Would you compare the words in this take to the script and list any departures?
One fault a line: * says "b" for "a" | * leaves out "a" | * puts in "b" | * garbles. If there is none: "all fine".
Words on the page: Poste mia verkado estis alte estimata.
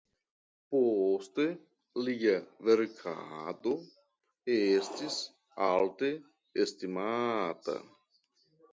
* says "lia" for "mia"